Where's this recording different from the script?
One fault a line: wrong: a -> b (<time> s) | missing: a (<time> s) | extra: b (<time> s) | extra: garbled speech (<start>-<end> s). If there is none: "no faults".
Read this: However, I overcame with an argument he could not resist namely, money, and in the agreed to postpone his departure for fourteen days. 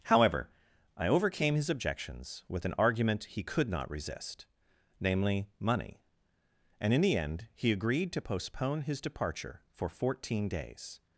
extra: his objections (1.6 s)
extra: end he (7.2 s)